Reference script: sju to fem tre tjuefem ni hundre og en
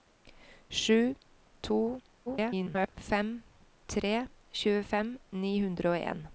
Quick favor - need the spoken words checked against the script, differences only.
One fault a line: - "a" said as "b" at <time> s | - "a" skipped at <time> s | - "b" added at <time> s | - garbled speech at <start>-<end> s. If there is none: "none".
- garbled speech at 2.3-2.9 s